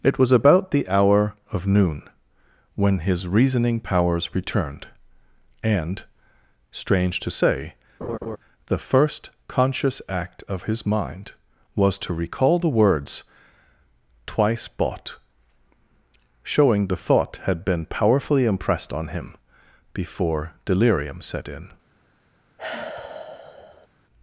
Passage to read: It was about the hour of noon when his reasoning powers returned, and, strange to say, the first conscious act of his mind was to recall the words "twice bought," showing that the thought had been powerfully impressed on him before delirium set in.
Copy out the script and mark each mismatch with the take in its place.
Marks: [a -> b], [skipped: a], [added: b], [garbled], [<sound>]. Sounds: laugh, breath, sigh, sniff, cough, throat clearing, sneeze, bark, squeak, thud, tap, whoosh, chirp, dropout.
It was about the hour of noon when his reasoning powers returned, and, strange to say, [laugh] the first conscious act of his mind was to recall the words "twice bought," showing [skipped: that] the thought had been powerfully impressed on him before delirium set in. [sigh]